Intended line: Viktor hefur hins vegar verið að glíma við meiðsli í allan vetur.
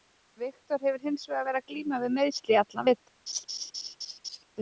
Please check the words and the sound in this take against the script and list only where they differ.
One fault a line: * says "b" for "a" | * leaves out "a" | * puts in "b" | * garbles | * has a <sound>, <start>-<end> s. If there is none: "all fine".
* has a laugh, 3.3-4.4 s